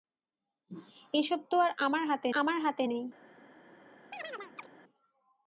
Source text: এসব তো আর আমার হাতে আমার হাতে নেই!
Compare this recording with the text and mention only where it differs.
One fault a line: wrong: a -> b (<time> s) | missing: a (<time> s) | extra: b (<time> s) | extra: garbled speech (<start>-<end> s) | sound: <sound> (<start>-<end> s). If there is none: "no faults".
sound: chirp (4.1-4.7 s)